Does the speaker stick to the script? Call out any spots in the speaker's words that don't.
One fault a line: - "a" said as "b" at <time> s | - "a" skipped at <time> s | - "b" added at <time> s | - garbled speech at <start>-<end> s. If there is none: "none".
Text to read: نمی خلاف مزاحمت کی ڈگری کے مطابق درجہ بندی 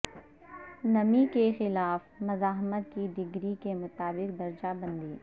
- "کے" added at 1.3 s